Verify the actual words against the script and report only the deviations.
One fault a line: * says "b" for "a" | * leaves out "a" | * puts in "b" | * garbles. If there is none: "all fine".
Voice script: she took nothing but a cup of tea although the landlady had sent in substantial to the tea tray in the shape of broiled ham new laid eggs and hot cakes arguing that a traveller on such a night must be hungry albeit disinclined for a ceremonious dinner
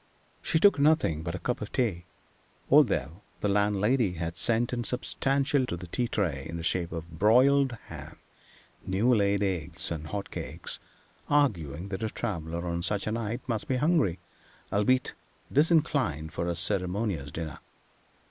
all fine